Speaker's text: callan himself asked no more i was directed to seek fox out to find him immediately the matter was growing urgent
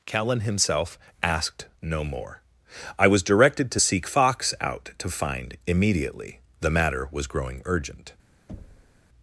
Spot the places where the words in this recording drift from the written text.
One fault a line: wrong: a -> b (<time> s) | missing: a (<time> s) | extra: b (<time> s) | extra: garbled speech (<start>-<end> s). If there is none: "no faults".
missing: him (5.6 s)